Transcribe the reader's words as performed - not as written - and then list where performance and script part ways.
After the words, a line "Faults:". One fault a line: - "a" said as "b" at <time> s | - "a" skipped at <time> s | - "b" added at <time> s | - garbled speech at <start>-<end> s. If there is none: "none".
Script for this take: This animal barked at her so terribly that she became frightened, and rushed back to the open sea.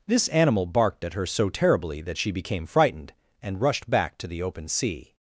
This animal barked at her so terribly that she became frightened, and rushed back to the open sea.
Faults:
none